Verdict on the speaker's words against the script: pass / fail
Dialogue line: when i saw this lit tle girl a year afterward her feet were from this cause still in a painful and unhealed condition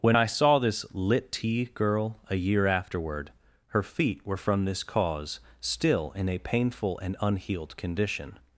fail